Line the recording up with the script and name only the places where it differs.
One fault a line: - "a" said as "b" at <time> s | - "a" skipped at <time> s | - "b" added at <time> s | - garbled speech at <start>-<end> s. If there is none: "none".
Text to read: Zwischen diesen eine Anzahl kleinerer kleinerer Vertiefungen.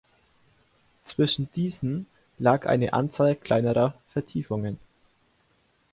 - "lag" added at 2.4 s
- "kleinerer" skipped at 4.0 s